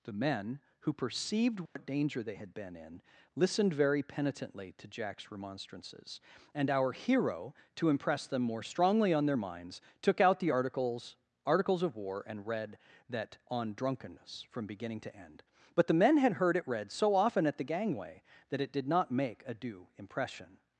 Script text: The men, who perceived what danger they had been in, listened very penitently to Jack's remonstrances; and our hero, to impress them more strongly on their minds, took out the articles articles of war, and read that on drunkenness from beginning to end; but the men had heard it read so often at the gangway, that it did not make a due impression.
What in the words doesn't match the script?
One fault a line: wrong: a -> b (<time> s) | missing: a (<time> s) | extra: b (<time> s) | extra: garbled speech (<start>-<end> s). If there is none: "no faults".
no faults